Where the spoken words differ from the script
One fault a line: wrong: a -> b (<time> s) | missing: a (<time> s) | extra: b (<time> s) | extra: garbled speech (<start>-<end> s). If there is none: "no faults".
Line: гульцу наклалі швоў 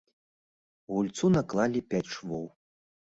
extra: пяць (1.9 s)